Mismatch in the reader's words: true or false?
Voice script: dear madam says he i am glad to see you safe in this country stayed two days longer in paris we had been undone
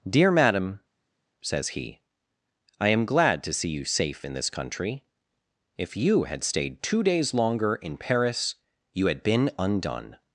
true